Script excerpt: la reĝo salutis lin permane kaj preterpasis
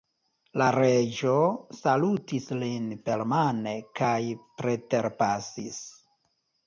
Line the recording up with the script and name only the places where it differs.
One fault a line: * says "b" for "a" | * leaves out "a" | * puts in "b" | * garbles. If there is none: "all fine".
all fine